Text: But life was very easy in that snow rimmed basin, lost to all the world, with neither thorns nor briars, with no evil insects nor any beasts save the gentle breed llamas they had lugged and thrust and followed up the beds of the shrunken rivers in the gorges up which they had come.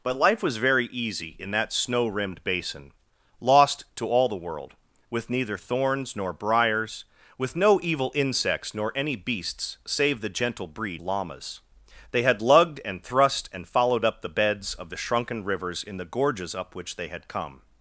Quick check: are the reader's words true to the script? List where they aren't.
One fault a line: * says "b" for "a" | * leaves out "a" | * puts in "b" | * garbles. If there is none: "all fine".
all fine